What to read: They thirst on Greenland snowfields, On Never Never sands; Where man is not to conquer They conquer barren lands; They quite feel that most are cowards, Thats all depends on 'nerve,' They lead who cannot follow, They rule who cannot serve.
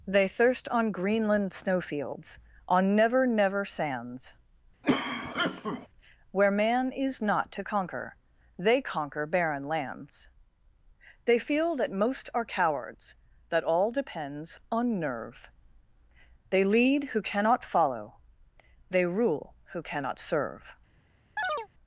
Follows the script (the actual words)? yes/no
no